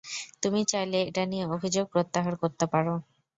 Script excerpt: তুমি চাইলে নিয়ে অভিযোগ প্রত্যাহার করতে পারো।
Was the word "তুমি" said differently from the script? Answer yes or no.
no